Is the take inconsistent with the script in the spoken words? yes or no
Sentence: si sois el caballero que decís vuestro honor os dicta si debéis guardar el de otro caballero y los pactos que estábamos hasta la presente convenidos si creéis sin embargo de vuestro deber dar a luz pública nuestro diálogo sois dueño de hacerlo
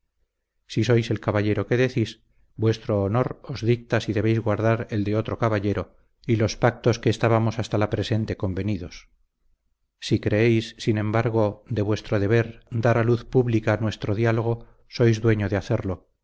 no